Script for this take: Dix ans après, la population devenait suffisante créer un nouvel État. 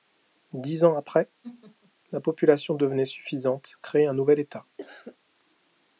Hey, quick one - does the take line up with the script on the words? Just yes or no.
yes